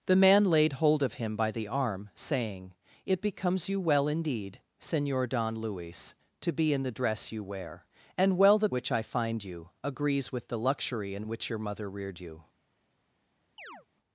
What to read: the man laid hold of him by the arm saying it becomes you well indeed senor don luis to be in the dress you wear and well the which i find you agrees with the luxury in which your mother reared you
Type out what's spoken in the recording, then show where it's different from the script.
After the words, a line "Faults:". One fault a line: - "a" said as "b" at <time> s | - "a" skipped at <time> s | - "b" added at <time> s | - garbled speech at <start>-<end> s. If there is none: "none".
the man laid hold of him by the arm saying it becomes you well indeed senor don luis to be in the dress you wear and well the which i find you agrees with the luxury in which your mother reared you
Faults:
none